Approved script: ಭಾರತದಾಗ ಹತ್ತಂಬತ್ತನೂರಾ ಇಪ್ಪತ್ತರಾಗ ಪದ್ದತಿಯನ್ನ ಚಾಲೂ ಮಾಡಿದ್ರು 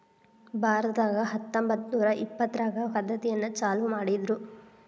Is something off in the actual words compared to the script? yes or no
no